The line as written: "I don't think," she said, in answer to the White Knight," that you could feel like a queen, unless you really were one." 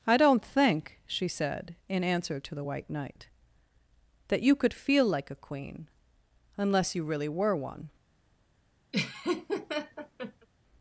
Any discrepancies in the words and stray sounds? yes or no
yes